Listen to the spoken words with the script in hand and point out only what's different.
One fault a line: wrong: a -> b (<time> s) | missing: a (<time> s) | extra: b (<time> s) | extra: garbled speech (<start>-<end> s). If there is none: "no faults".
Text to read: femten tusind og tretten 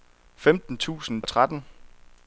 no faults